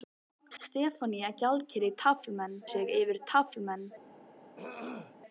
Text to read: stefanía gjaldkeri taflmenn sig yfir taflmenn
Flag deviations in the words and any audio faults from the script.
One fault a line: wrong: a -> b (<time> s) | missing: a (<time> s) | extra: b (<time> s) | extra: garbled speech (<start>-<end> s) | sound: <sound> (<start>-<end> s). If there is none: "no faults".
sound: throat clearing (4.6-5.2 s)